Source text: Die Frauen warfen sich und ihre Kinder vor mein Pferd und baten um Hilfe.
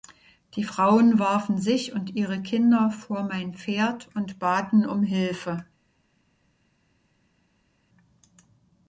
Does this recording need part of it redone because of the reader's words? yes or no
no